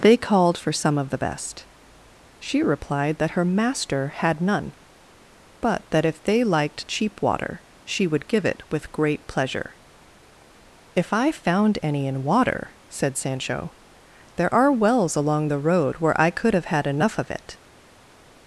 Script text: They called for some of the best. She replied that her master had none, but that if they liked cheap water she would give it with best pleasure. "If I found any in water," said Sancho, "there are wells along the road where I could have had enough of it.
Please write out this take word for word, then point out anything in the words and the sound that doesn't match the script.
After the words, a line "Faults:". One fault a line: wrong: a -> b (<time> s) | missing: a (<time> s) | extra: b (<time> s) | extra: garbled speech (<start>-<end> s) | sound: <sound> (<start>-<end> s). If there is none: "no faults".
They called for some of the best. She replied that her master had none, but that if they liked cheap water she would give it with great pleasure. "If I found any in water," said Sancho, "there are wells along the road where I could have had enough of it.
Faults:
wrong: best -> great (8.9 s)